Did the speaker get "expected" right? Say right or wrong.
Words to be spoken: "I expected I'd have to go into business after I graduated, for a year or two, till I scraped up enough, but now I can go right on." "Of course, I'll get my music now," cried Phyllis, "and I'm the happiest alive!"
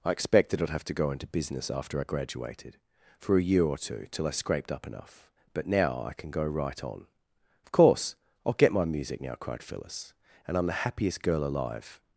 right